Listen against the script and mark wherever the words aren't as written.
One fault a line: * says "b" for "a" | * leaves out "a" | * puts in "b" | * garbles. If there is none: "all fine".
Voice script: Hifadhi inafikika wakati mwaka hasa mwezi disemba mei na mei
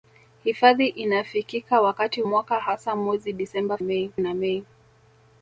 all fine